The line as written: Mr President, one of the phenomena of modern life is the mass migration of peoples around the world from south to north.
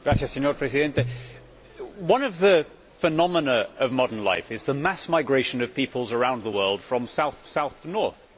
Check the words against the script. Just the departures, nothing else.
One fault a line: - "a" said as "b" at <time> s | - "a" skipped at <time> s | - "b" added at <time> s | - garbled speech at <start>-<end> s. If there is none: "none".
- "south" added at 7.4 s